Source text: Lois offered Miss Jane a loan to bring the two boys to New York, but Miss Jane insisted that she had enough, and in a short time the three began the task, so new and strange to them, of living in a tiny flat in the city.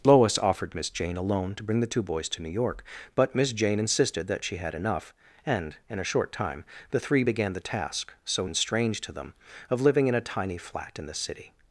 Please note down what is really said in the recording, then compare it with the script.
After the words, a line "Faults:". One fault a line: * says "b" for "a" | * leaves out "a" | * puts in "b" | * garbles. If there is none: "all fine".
Lois offered Miss Jane a loan to bring the two boys to New York, but Miss Jane insisted that she had enough, and in a short time the three began the task, so and strange to them, of living in a tiny flat in the city.
Faults:
* leaves out "new"